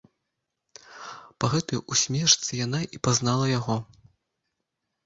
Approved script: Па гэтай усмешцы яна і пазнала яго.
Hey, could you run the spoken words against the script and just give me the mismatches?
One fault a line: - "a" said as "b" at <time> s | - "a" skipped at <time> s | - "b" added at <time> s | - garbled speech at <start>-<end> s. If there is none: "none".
none